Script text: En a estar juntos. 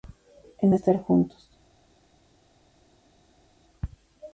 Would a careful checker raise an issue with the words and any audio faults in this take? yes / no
no